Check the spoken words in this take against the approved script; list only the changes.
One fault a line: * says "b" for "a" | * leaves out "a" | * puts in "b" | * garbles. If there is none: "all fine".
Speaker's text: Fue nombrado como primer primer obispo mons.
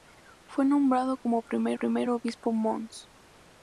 all fine